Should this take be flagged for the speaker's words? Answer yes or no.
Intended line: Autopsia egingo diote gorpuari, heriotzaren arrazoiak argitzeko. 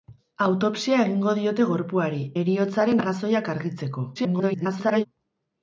yes